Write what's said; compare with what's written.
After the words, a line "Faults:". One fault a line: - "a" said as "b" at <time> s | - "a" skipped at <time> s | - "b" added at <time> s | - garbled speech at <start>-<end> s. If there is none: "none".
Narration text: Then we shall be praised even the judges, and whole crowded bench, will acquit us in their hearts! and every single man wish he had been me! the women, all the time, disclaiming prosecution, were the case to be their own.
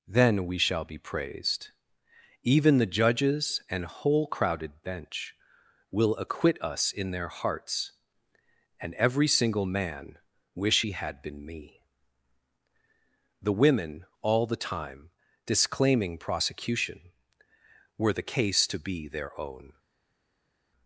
Then we shall be praised even the judges, and whole crowded bench, will acquit us in their hearts! and every single man wish he had been me! the women, all the time, disclaiming prosecution, were the case to be their own.
Faults:
none